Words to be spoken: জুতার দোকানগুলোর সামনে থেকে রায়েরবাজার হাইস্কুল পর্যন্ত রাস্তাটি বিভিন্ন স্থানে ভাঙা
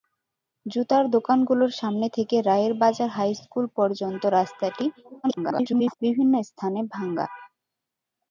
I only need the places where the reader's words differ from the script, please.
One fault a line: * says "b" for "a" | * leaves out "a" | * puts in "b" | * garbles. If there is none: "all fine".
* garbles